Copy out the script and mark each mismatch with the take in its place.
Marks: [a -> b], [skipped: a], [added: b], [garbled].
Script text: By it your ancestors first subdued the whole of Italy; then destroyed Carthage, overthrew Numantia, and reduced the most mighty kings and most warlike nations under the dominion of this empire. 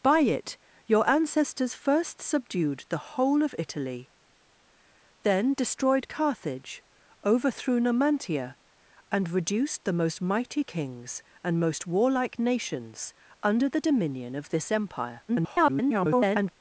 By it your ancestors first subdued the whole of Italy; then destroyed Carthage, overthrew Numantia, and reduced the most mighty kings and most warlike nations under the dominion of this empire. [garbled]